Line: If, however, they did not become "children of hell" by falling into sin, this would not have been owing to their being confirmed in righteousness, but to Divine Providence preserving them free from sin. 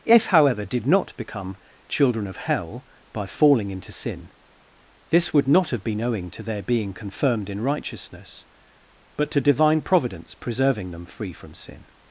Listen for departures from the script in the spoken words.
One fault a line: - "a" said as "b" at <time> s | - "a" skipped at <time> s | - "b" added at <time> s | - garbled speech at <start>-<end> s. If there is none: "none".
- "they" skipped at 0.7 s